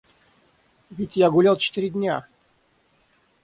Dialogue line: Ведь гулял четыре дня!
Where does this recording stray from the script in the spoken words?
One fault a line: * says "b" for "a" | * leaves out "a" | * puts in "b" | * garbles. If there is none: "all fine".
* puts in "я"